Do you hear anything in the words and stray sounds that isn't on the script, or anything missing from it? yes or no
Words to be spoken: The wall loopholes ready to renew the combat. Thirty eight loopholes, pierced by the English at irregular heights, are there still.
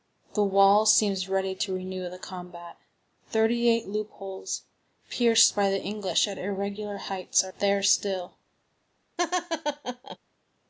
yes